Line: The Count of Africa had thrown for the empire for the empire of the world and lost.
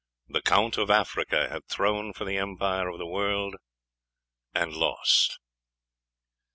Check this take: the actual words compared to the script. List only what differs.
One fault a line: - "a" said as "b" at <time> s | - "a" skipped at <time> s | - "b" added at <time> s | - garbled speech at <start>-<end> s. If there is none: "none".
- "for the empire" skipped at 2.9 s